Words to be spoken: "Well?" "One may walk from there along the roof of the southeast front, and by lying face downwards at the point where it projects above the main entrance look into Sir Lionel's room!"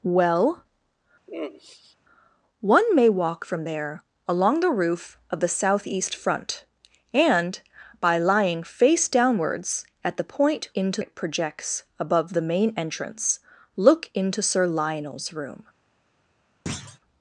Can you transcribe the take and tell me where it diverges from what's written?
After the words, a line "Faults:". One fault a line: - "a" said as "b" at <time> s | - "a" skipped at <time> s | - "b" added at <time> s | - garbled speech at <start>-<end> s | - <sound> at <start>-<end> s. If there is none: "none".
"Well?" "One may walk from there along the roof of the southeast front, and by lying face downwards at the point into it projects above the main entrance look into Sir Lionel's room!"
Faults:
- sigh at 1.3-2.0 s
- "where" said as "into" at 10.7 s
- thud at 16.7-17.0 s